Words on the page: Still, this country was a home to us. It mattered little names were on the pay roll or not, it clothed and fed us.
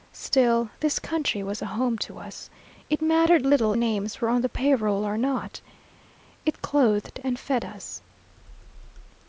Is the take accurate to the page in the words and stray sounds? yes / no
yes